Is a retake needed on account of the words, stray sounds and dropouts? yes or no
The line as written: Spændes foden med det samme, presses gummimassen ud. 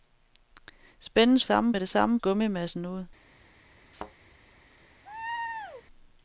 yes